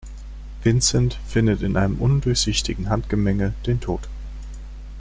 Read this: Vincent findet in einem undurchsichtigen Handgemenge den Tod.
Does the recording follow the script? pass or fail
pass